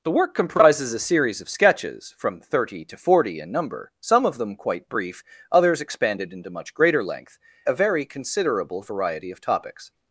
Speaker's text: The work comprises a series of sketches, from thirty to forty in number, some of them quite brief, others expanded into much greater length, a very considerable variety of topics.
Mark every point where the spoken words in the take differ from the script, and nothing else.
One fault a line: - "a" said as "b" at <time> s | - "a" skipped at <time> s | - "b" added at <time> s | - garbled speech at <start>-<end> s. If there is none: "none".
none